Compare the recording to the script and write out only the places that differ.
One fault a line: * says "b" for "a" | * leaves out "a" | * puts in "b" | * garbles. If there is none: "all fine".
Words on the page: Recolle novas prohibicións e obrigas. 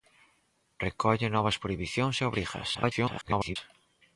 * garbles